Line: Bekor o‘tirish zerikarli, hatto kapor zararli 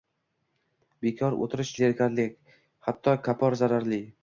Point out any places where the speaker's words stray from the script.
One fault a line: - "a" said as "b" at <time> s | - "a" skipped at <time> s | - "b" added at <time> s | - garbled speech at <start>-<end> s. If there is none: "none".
none